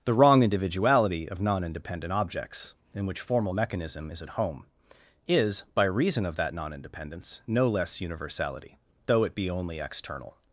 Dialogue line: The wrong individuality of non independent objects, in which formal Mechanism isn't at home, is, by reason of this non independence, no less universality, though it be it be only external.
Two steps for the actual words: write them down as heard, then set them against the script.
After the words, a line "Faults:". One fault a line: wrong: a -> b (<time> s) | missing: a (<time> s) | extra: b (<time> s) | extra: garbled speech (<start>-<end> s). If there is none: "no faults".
The wrong individuality of non independent objects, in which formal Mechanism is at home, is, by reason of that non independence, no less universality, though it be only external.
Faults:
wrong: isn't -> is (4.1 s)
wrong: this -> that (6.3 s)
missing: it be (9.5 s)